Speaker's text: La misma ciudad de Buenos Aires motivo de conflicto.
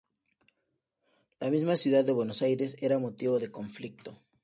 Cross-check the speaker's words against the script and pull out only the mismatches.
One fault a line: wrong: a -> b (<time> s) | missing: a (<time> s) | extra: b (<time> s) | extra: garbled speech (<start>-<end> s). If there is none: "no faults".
extra: era (2.8 s)